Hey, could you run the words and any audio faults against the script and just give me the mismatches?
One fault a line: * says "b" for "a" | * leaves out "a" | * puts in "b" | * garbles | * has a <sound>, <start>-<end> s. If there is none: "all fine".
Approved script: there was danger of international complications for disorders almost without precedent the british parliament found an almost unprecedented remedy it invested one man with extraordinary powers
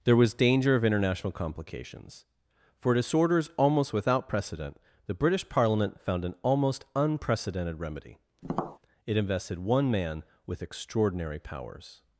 * has a tap, 8.4-8.8 s